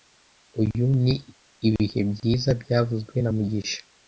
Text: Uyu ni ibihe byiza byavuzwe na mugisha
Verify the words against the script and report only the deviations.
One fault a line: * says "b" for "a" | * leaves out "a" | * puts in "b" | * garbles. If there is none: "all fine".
all fine